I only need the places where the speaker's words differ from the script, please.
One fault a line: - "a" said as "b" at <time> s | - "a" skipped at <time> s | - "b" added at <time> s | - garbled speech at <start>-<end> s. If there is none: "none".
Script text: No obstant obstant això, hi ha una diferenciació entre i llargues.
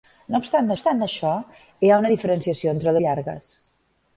none